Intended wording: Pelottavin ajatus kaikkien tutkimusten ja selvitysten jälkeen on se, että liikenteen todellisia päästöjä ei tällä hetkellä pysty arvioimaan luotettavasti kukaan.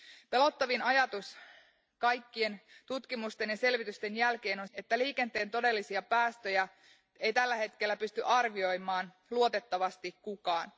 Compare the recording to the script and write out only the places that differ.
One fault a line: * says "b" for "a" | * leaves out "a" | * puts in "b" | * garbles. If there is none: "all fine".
* leaves out "se"